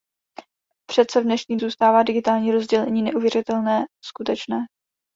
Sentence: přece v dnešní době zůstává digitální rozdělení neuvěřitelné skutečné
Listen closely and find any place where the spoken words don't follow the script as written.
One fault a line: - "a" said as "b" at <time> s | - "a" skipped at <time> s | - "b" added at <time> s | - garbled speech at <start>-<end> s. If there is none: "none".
- "době" skipped at 1.6 s